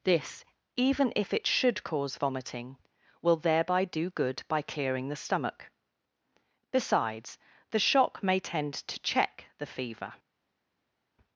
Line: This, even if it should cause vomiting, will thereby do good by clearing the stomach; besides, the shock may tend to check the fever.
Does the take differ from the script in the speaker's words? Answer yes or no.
no